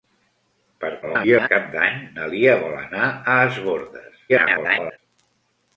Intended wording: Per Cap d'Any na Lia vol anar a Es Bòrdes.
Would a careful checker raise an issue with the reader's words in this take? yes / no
yes